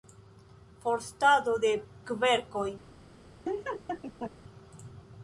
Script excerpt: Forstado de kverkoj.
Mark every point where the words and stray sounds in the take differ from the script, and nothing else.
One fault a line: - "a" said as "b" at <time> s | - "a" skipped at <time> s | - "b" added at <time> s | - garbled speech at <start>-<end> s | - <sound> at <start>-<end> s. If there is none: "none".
- laugh at 3.4-4.3 s